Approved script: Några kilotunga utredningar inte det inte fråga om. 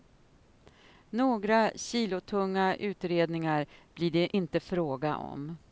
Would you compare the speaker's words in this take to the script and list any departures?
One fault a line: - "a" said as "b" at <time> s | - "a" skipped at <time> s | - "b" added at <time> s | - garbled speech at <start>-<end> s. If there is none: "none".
- "inte" said as "blir" at 3.9 s